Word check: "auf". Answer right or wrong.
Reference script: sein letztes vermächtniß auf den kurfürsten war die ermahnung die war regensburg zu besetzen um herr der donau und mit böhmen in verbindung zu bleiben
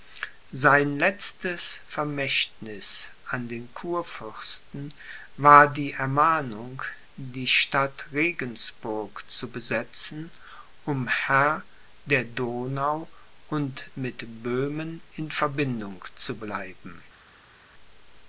wrong